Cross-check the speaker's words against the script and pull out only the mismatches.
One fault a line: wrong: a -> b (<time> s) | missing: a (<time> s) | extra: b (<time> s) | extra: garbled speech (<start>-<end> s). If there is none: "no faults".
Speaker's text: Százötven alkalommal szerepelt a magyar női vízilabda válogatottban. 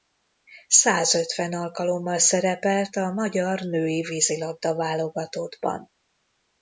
no faults